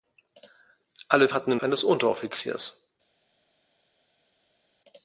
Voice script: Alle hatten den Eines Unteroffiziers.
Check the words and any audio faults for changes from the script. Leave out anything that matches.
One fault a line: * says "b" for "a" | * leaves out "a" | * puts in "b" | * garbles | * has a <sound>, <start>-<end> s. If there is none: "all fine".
all fine